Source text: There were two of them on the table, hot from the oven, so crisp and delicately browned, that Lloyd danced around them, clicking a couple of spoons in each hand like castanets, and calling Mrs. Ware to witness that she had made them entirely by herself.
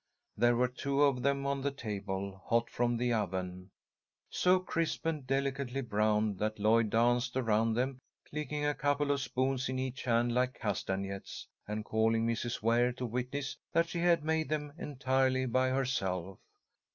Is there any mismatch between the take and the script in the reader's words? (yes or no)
no